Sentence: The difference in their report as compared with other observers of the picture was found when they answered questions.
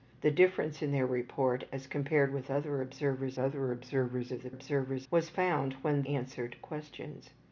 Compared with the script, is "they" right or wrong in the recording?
wrong